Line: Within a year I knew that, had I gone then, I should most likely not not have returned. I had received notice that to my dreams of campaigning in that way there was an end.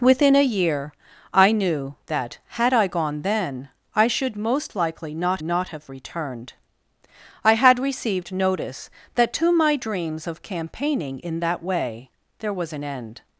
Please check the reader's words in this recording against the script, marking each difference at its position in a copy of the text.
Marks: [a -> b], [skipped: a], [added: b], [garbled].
Within a year I knew that, had I gone then, I should most likely not not have returned. I had received notice that to my dreams of campaigning in that way there was an end.